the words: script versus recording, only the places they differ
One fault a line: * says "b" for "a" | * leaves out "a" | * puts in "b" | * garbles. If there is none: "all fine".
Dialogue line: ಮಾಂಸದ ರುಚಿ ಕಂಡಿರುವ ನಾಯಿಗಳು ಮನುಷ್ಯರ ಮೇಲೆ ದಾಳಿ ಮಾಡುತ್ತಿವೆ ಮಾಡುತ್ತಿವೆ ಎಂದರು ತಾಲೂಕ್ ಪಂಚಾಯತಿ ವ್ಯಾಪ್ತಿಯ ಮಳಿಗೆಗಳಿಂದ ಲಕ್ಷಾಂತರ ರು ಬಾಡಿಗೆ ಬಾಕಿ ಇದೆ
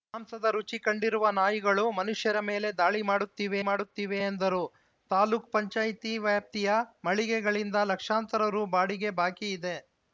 all fine